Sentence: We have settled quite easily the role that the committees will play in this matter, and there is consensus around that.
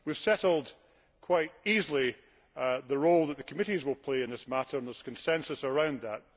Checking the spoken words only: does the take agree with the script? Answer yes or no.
yes